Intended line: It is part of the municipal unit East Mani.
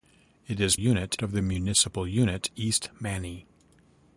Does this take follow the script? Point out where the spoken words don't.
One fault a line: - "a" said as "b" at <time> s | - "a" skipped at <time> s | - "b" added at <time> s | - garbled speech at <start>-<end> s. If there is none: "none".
- "part" said as "unit" at 0.7 s